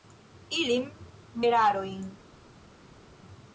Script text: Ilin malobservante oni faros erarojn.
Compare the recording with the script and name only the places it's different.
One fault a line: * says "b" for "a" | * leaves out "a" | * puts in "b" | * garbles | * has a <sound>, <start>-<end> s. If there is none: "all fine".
* leaves out "malobservante oni faros"